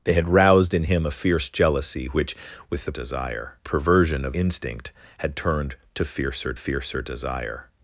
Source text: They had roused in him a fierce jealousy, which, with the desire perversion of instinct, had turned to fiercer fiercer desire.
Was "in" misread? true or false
false